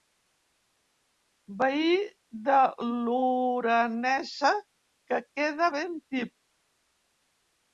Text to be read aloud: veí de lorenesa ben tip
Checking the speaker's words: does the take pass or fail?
fail